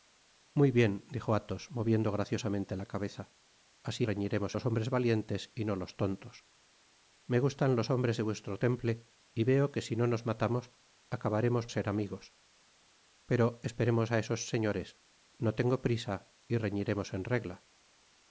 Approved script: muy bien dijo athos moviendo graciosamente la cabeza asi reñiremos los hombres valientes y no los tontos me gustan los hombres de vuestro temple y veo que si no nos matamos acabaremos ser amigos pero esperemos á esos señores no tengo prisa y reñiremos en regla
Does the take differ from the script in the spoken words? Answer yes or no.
no